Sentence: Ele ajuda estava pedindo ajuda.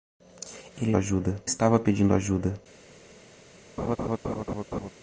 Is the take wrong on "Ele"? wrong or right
right